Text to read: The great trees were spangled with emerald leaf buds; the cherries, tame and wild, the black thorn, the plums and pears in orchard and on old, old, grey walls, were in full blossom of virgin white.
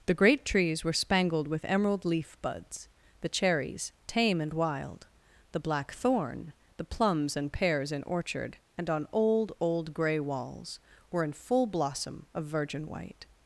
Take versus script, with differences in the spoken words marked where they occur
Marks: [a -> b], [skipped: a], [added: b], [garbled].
The great trees were spangled with emerald leaf buds; the cherries, tame and wild, the black thorn, the plums and pears in orchard and on old, old, grey walls, were in full blossom of virgin white.